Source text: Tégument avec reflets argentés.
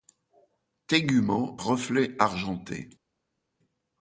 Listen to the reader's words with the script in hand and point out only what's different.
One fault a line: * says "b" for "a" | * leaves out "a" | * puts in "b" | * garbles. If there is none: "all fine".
* leaves out "avec"